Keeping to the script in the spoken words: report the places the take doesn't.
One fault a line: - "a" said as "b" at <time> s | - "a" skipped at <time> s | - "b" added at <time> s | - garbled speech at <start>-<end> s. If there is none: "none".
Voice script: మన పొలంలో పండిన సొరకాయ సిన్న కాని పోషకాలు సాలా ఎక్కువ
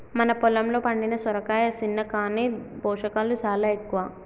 none